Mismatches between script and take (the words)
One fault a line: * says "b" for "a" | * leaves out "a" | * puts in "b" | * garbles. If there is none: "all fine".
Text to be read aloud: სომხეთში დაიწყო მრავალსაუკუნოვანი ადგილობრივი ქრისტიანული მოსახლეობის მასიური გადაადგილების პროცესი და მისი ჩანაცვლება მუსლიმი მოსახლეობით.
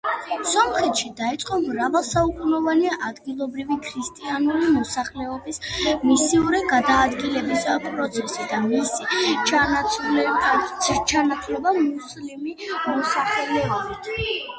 all fine